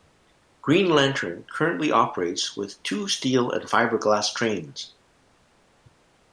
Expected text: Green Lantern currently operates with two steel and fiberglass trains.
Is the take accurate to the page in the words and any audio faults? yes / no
yes